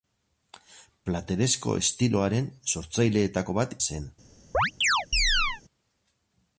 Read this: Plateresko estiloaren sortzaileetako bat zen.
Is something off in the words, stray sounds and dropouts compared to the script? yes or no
yes